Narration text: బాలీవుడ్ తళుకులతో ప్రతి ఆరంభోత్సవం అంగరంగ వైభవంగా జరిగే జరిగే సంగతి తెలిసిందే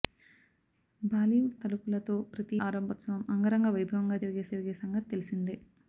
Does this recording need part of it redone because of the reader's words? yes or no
no